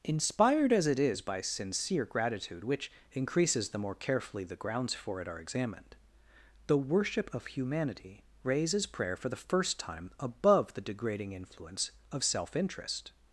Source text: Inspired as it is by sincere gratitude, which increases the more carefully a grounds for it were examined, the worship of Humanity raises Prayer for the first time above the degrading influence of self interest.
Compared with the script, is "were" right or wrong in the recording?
wrong